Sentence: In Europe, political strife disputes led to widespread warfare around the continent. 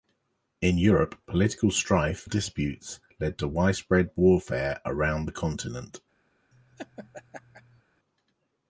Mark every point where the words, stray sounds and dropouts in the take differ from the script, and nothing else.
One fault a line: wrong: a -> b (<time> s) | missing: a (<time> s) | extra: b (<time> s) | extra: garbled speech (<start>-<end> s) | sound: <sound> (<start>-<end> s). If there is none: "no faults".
sound: laugh (6.5-7.8 s)